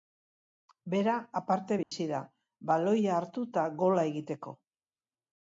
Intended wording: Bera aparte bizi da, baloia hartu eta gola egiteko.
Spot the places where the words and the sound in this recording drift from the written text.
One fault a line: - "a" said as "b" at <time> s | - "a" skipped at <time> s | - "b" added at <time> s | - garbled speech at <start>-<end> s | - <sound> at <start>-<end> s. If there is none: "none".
- dropout at 1.8-1.9 s